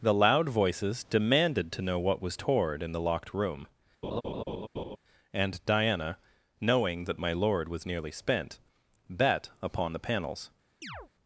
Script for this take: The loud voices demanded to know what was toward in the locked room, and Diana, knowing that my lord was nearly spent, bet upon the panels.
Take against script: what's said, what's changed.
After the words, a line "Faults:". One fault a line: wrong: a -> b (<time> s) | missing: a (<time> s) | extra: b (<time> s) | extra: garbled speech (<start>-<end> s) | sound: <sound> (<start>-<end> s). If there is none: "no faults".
The loud voices demanded to know what was toward in the locked room, and Diana, knowing that my lord was nearly spent, bet upon the panels.
Faults:
sound: laugh (4.0-5.0 s)
sound: chirp (10.8-11.1 s)